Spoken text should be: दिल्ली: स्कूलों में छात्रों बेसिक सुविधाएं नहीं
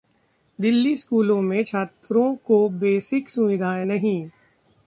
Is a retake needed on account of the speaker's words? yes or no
yes